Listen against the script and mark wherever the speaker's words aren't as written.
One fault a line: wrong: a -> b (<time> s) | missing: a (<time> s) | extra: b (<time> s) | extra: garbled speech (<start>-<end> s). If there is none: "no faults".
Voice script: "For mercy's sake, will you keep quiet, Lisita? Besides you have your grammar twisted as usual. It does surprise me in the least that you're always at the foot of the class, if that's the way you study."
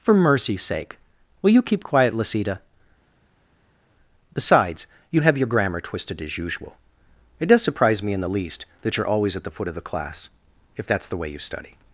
no faults